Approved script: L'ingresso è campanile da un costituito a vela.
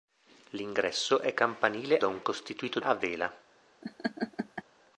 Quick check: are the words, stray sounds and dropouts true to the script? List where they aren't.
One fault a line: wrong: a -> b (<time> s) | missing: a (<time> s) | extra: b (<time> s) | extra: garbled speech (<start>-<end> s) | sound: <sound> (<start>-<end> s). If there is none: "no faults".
sound: laugh (3.8-4.6 s)